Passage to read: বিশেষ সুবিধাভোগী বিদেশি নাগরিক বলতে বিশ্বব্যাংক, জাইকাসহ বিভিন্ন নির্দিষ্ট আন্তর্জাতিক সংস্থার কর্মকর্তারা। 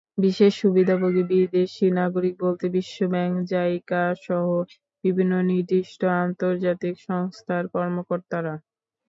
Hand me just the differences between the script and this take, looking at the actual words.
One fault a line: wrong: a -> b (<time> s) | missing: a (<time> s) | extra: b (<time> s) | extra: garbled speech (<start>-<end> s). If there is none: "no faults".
no faults